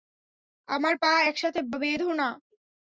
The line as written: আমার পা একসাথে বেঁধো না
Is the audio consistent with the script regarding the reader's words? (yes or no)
yes